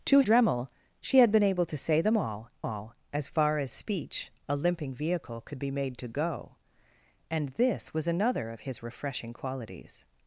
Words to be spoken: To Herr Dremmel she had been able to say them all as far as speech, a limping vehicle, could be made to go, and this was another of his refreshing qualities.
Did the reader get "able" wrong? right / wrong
right